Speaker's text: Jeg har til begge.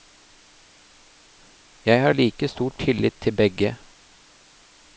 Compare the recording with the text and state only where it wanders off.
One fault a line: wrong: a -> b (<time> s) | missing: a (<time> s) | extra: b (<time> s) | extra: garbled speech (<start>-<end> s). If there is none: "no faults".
extra: like stor tillit (2.1 s)